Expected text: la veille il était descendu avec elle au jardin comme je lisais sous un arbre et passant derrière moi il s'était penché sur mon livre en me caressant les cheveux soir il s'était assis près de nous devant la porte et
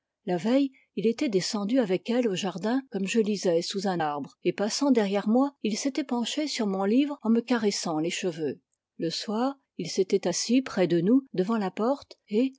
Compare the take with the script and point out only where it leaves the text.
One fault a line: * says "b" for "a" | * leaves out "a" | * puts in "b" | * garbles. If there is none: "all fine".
* puts in "le"